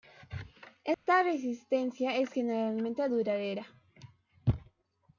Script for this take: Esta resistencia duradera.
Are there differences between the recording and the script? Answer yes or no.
yes